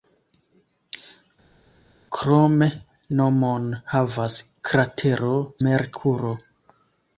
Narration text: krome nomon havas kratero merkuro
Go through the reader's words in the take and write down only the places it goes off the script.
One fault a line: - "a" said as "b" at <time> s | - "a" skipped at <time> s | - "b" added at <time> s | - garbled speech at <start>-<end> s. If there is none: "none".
none